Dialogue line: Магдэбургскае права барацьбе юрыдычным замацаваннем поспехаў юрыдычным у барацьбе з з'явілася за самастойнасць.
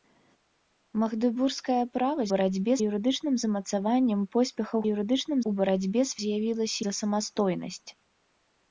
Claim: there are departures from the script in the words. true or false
false